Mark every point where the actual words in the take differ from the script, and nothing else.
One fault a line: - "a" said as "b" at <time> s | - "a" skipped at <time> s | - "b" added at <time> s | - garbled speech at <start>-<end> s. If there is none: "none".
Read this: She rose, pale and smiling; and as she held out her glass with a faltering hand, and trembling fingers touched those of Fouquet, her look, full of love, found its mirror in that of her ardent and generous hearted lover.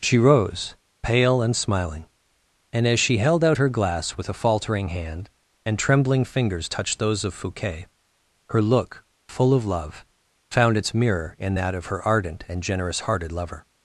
none